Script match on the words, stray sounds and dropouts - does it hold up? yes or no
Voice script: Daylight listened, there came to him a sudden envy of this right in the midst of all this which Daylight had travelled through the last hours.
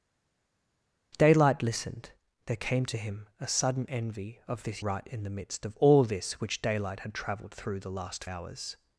yes